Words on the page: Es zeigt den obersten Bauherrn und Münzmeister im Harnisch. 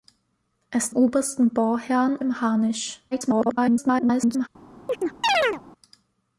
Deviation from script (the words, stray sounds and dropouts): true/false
true